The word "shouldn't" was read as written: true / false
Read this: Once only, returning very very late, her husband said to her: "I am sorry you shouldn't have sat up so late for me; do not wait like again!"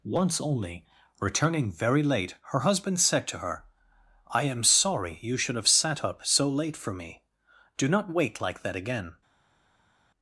false